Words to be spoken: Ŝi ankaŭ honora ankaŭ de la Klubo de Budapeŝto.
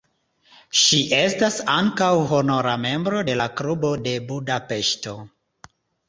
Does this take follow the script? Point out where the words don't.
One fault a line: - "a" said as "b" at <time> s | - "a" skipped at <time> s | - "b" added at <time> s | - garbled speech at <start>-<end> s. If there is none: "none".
- "estas" added at 1.2 s
- "ankaŭ" said as "membro" at 2.8 s